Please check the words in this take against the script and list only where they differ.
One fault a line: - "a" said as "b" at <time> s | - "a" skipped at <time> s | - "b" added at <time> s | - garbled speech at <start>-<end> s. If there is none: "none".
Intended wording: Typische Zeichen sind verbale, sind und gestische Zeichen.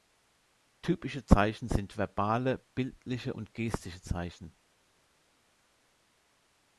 - "sind" said as "bildliche" at 2.7 s